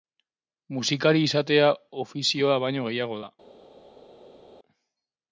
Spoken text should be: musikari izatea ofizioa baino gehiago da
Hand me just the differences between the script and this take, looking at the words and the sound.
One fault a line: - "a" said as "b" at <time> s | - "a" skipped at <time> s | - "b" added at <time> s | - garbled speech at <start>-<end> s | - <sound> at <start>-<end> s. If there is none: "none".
none